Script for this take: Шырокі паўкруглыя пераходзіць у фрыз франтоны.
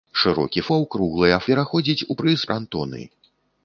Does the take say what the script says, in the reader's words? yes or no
yes